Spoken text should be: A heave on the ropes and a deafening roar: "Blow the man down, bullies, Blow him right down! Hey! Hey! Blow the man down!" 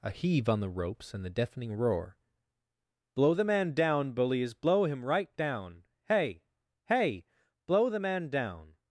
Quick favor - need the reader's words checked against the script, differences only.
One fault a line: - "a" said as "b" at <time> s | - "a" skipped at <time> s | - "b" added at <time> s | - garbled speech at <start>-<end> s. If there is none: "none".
- "a" said as "the" at 1.2 s